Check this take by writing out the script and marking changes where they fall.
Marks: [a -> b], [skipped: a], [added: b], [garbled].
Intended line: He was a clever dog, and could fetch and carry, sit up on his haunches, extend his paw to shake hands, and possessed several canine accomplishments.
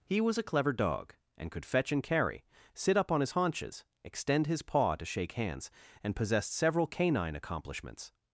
He was a clever dog, and could fetch and carry, sit up on his haunches, extend his paw to shake hands, and possessed several canine accomplishments.